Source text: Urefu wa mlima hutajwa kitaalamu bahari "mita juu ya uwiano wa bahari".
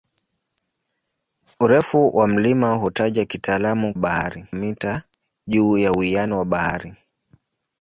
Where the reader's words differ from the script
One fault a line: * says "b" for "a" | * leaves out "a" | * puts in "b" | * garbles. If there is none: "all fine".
all fine